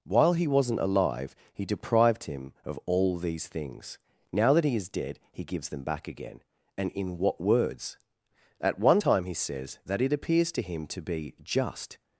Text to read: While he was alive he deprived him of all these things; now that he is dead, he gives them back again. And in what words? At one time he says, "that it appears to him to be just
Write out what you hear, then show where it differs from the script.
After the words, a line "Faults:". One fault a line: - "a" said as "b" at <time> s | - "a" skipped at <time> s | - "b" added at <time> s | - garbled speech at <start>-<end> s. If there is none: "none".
While he wasn't alive he deprived him of all these things; now that he is dead, he gives them back again. And in what words? At one time he says, "that it appears to him to be just
Faults:
- "was" said as "wasn't" at 0.5 s